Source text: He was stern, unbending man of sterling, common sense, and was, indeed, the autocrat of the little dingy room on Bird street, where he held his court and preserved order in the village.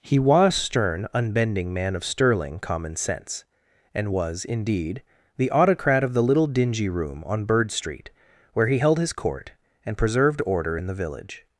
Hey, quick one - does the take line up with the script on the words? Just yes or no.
yes